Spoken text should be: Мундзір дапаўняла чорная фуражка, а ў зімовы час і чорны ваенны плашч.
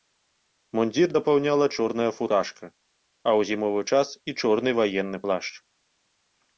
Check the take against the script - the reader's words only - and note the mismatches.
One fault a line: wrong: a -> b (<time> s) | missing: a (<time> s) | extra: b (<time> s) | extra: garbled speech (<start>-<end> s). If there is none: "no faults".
no faults